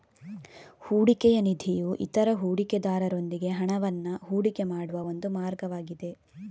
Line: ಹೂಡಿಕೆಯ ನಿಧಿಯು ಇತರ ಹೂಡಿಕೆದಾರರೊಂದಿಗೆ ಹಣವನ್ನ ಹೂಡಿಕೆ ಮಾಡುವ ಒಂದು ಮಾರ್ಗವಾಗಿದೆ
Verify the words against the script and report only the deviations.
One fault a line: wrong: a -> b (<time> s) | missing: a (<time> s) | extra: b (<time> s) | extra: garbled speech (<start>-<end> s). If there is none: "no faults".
no faults